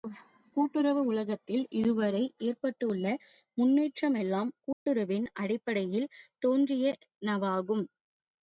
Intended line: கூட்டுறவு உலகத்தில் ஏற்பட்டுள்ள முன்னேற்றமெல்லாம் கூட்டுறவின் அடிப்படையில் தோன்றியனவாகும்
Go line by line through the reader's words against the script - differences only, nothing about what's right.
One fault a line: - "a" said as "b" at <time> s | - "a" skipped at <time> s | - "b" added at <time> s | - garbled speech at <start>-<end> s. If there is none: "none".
- "இதுவரை" added at 1.8 s